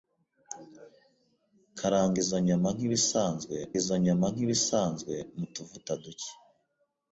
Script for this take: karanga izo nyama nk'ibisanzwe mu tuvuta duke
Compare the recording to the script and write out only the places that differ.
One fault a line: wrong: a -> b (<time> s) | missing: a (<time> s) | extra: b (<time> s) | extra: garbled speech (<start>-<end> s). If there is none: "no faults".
extra: izo nyama nk'ibisanzwe (3.8 s)